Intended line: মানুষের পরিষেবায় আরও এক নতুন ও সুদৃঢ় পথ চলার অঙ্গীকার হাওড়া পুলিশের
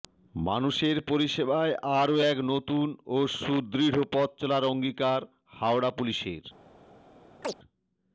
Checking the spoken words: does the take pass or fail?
pass